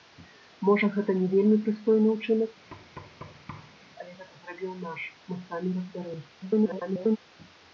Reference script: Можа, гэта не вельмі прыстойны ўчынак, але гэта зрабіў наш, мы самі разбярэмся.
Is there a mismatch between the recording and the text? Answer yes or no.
yes